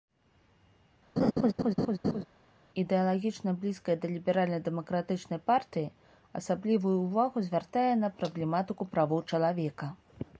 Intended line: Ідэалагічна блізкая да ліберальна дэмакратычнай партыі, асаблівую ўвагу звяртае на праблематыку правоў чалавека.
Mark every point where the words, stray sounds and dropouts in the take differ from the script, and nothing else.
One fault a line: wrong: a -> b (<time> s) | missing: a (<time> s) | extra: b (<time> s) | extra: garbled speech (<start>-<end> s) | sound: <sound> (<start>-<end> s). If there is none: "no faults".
sound: laugh (1.2-2.2 s)